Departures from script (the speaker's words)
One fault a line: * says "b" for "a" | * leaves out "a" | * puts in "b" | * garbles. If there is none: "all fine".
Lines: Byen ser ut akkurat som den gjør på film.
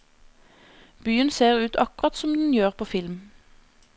all fine